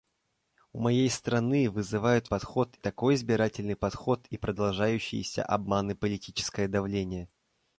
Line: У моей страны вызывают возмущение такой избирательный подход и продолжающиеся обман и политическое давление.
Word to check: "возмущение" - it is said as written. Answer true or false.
false